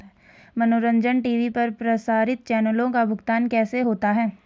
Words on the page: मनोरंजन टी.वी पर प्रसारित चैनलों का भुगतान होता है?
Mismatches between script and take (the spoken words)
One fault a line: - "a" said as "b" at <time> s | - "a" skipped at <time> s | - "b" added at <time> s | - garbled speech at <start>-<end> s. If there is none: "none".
- "कैसे" added at 3.5 s